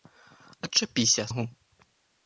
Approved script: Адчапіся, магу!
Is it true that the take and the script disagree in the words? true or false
false